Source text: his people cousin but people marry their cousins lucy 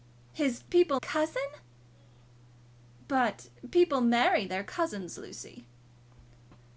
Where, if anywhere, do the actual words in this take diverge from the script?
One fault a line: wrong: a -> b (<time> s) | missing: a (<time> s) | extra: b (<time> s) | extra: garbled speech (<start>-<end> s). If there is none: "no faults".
no faults